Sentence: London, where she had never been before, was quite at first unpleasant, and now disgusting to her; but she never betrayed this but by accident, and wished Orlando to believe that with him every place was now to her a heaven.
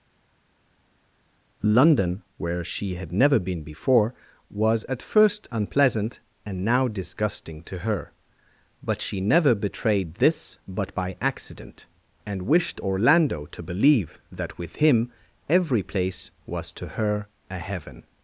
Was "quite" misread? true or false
true